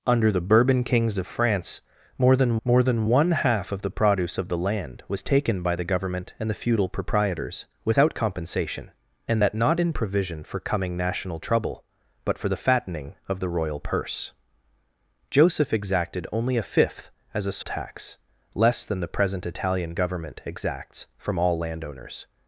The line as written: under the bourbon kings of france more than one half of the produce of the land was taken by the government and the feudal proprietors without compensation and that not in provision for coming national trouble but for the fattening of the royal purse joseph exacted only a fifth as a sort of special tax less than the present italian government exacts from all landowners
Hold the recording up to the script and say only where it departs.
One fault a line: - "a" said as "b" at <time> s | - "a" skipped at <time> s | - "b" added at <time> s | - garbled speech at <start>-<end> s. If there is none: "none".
- "more than" added at 2.6 s
- "sort of special" skipped at 17.6 s